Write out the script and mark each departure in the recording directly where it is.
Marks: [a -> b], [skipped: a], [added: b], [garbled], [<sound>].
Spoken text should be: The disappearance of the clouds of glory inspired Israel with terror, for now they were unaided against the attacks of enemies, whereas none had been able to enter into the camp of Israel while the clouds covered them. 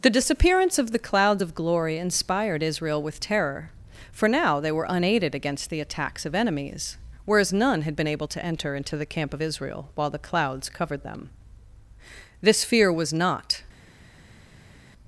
The disappearance of the clouds of glory inspired Israel with terror, for now they were unaided against the attacks of enemies, whereas none had been able to enter into the camp of Israel while the clouds covered them. [added: This fear was not]